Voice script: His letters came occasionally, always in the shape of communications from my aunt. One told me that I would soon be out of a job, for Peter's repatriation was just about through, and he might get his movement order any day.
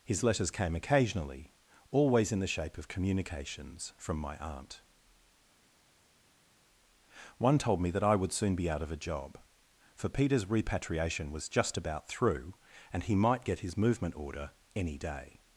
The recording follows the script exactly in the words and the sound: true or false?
true